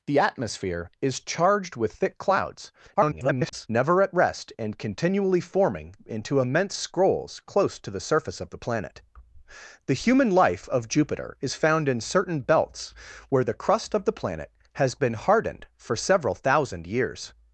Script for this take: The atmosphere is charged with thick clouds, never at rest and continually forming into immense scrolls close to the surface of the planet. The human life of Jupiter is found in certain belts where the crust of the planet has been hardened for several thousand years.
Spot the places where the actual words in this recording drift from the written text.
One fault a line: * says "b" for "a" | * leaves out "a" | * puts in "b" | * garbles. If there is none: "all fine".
* garbles